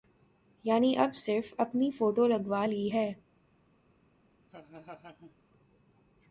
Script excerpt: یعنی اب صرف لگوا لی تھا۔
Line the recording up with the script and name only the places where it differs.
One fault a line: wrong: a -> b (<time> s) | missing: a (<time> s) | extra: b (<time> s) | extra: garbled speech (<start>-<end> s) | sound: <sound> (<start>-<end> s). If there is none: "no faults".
extra: اپنی فوٹو (1.6 s)
wrong: تھا -> ہے (2.9 s)
sound: laugh (4.5-5.3 s)